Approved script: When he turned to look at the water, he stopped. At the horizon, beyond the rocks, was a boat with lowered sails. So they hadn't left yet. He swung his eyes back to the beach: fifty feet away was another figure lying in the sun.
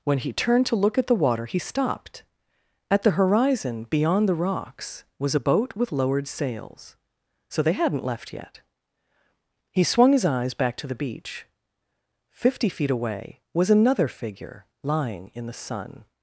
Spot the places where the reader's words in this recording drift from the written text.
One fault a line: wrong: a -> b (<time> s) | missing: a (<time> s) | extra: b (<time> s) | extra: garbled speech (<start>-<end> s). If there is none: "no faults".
no faults